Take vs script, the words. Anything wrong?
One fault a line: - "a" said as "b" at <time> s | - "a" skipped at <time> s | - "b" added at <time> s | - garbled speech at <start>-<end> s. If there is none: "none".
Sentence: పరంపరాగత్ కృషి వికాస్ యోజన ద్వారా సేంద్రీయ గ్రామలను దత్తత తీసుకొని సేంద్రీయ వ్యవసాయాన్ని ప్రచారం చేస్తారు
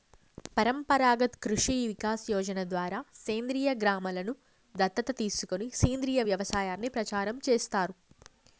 none